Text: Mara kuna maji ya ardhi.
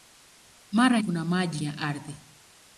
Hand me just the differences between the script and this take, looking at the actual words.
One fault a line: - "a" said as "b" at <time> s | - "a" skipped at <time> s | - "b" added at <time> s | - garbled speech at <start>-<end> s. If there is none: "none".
none